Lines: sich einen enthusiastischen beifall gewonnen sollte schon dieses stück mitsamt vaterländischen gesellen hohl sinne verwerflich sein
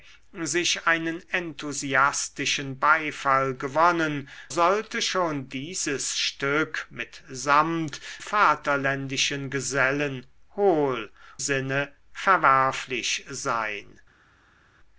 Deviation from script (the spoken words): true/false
false